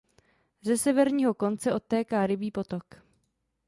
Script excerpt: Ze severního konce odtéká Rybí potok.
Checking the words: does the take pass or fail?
pass